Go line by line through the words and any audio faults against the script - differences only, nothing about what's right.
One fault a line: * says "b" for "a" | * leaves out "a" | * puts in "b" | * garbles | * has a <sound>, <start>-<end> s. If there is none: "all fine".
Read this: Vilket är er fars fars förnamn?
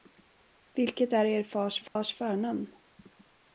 * has a dropout, 1.9-2.0 s